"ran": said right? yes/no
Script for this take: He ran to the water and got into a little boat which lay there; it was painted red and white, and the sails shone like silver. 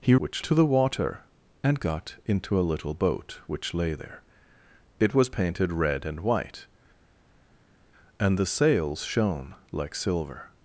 no